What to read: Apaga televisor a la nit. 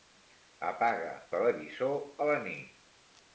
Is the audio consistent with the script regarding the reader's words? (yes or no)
yes